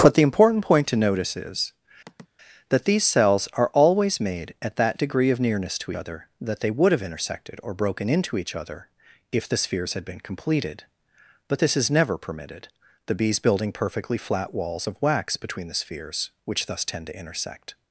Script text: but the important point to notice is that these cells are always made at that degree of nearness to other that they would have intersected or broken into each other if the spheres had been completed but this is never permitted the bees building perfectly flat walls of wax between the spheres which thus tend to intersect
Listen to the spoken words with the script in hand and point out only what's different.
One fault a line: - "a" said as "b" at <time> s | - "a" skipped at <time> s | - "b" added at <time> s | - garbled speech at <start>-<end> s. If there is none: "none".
none